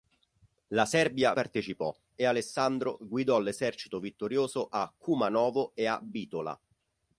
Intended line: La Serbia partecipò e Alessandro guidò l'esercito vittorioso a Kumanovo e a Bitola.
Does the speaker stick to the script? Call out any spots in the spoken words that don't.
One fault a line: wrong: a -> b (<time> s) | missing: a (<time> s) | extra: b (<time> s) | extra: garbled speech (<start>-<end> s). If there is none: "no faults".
no faults